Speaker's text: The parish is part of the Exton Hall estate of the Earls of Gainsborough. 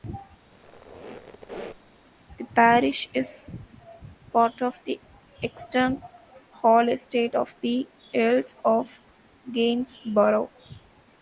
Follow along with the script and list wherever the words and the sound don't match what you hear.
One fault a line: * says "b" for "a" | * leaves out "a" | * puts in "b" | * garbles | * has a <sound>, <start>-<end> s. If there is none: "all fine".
* has a squeak, 0.5-1.9 s